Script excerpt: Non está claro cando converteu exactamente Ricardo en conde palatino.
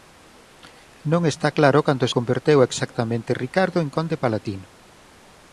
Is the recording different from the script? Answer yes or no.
no